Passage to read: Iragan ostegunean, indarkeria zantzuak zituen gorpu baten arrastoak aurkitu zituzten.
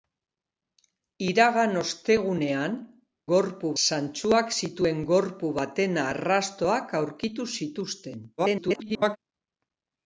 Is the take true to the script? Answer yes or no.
no